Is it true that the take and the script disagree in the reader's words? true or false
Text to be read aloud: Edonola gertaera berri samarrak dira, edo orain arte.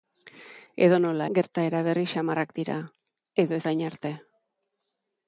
false